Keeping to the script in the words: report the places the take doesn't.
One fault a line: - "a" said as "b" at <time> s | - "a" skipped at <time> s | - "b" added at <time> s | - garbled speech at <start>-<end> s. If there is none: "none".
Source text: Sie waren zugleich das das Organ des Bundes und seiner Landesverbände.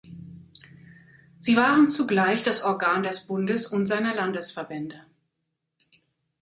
- "das" skipped at 2.6 s